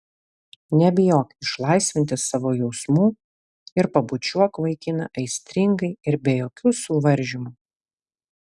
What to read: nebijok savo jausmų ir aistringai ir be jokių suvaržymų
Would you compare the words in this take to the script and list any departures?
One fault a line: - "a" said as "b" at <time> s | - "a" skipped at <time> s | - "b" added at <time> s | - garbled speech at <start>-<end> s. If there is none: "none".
- "išlaisvinti" added at 1.4 s
- "pabučiuok vaikiną" added at 4.0 s